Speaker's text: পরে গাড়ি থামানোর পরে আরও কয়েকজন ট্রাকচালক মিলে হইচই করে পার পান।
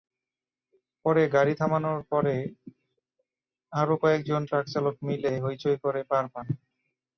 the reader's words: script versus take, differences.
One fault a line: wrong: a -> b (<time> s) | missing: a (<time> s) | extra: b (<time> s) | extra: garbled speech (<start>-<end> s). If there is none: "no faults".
no faults